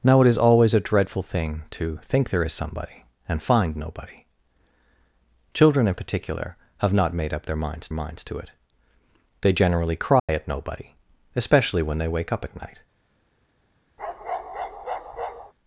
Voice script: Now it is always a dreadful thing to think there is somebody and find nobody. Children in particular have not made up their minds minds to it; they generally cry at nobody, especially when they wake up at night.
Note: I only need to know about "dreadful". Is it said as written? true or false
true